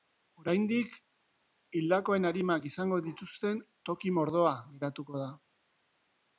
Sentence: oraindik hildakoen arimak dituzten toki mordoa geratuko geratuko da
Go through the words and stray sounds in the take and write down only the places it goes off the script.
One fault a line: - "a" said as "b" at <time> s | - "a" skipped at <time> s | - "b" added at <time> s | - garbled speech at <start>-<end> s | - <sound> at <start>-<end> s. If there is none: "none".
- "izango" added at 2.7 s
- "geratuko" skipped at 5.2 s